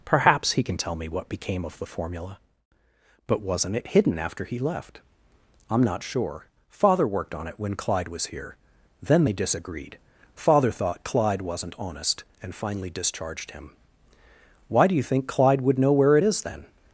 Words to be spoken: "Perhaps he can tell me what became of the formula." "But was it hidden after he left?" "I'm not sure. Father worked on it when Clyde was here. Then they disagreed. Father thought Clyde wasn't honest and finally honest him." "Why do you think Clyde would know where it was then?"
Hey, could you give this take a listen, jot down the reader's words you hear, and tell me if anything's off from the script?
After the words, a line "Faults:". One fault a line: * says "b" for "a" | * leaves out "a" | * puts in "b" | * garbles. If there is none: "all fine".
"Perhaps he can tell me what became of the formula." "But wasn't it hidden after he left?" "I'm not sure. Father worked on it when Clyde was here. Then they disagreed. Father thought Clyde wasn't honest and finally discharged him." "Why do you think Clyde would know where it is then?"
Faults:
* says "wasn't" for "was"
* says "discharged" for "honest"
* says "is" for "was"